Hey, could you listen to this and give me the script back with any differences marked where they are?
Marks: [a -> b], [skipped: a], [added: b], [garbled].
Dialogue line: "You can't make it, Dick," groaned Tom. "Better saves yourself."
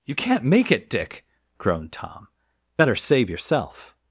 "You can't make it, Dick," groaned Tom. "Better [saves -> save] yourself."